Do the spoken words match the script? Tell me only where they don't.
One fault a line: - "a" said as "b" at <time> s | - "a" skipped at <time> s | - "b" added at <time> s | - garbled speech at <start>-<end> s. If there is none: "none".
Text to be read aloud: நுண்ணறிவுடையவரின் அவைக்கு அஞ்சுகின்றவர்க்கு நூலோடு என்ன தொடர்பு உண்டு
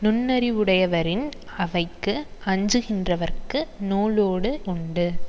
- "என்ன தொடர்பு" skipped at 4.5 s